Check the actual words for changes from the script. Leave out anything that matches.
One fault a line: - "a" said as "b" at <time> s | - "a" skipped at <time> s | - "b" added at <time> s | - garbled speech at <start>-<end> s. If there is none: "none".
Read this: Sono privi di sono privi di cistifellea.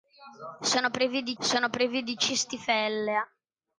none